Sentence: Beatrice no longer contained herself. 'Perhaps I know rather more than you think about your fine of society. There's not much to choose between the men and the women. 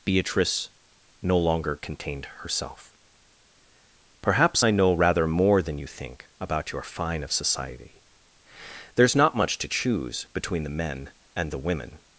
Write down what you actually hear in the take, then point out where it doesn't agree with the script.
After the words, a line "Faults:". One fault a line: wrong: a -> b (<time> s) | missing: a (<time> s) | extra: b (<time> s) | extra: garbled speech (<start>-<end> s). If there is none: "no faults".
Beatrice no longer contained herself. 'Perhaps I know rather more than you think about your fine of society. There's not much to choose between the men and the women.
Faults:
no faults